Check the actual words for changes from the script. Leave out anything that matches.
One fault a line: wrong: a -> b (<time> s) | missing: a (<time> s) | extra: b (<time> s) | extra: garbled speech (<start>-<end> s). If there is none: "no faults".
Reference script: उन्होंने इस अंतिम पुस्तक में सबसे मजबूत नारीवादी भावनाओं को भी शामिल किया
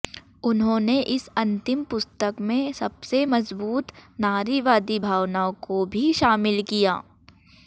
no faults